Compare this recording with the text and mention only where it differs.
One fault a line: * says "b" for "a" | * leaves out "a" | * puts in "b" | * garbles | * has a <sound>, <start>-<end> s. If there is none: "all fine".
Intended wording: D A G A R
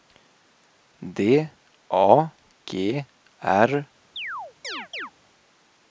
* leaves out "A"
* has a chirp, 4.2-5.1 s